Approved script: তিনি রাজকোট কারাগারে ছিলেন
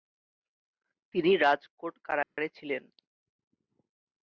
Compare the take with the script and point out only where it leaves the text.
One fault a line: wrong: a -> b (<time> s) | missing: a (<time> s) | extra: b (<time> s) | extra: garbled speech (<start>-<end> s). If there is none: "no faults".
no faults